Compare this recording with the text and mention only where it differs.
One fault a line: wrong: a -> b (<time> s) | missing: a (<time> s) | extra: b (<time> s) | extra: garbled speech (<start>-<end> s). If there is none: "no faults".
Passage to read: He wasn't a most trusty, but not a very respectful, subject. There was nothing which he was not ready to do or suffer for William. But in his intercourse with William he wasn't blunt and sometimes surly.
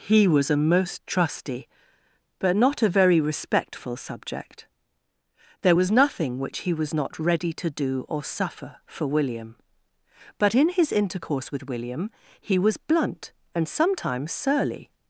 wrong: wasn't -> was (0.3 s)
wrong: wasn't -> was (12.6 s)